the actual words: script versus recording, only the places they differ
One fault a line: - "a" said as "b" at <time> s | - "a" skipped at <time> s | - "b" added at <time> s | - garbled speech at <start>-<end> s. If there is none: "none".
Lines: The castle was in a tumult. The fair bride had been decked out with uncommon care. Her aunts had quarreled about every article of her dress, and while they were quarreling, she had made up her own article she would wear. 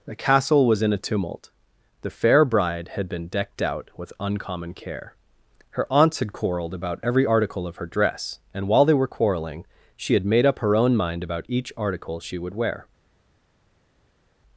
- "mind about each" added at 10.9 s